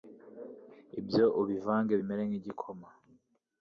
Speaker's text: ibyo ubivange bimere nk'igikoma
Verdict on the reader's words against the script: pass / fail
pass